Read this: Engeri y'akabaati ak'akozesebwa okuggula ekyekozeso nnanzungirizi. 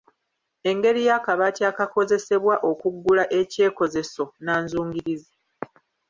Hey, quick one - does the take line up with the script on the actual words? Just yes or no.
yes